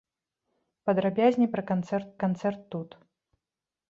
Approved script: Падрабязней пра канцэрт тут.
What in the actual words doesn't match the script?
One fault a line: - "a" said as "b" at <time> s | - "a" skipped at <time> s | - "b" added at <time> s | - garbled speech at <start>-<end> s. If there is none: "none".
- "канцэрт" added at 2.3 s